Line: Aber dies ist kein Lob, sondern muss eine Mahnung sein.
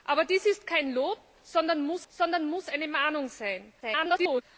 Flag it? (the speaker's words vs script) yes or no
yes